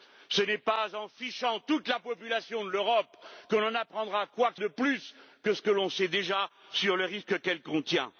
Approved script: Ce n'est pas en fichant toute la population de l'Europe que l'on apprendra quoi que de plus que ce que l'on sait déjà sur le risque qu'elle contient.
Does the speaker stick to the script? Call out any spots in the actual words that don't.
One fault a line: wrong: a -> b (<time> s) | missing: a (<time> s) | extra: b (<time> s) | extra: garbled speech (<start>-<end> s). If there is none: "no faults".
no faults